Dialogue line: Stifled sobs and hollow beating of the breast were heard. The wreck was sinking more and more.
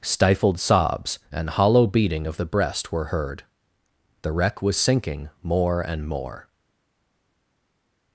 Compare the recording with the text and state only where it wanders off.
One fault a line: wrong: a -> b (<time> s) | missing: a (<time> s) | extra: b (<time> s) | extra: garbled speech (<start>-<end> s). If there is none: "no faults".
no faults